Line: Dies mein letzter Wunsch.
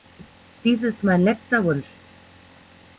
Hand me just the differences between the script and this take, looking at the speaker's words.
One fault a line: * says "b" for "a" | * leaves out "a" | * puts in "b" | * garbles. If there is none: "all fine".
* puts in "ist"